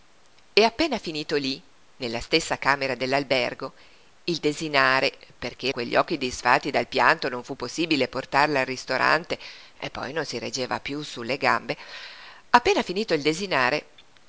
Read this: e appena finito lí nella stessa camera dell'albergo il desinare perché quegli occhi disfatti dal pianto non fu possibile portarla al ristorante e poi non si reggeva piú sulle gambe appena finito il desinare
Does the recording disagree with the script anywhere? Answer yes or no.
no